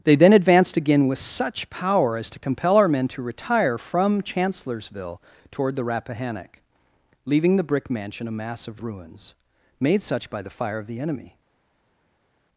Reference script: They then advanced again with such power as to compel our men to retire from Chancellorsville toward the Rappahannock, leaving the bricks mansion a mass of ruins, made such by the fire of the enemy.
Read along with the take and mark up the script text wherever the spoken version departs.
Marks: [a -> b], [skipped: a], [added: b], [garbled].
They then advanced again with such power as to compel our men to retire from Chancellorsville toward the Rappahannock, leaving the [bricks -> brick] mansion a mass of ruins, made such by the fire of the enemy.